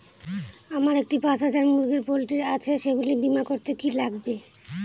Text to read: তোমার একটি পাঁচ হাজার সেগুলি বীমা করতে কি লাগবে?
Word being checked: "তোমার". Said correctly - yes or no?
no